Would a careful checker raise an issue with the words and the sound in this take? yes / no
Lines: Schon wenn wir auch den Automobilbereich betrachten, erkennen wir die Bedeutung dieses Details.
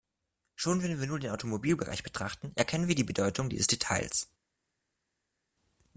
yes